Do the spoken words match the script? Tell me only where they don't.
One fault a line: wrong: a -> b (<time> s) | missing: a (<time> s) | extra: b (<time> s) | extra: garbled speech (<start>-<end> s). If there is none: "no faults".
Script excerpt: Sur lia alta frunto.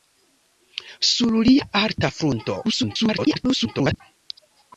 extra: garbled speech (2.6-4.0 s)